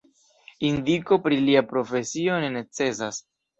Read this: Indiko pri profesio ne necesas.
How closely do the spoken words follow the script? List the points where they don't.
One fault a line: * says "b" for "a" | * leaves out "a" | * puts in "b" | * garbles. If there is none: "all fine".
* puts in "lia"